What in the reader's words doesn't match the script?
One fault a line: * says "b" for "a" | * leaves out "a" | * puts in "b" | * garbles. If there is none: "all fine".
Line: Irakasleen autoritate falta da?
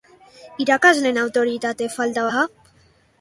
all fine